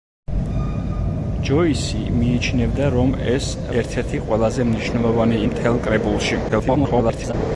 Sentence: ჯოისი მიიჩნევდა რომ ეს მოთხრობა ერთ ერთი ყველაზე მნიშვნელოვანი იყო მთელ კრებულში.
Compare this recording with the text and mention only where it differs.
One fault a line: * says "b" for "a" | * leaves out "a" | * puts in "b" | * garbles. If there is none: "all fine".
* leaves out "მოთხრობა"
* leaves out "იყო"
* garbles